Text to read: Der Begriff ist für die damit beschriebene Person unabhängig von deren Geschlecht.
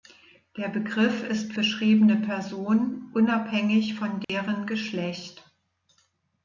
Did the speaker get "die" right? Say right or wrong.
wrong